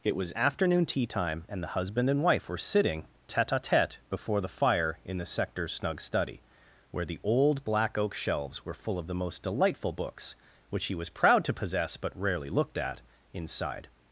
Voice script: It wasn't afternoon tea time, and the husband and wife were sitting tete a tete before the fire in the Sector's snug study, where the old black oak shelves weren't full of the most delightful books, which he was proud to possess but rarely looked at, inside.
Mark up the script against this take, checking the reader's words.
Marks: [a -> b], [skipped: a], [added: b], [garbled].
It [wasn't -> was] afternoon tea time, and the husband and wife were sitting tete a tete before the fire in the Sector's snug study, where the old black oak shelves [weren't -> were] full of the most delightful books, which he was proud to possess but rarely looked at, inside.